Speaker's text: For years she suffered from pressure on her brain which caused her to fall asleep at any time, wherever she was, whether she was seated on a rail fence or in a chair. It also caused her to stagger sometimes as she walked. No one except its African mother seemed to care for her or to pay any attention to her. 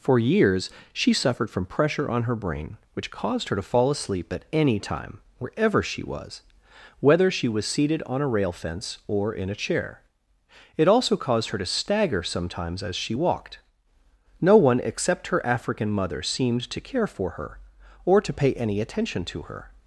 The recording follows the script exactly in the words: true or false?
false